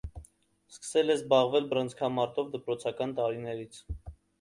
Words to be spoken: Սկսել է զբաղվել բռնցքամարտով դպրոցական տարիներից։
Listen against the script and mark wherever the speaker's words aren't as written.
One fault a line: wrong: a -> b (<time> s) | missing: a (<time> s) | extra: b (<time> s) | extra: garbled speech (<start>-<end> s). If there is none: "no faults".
no faults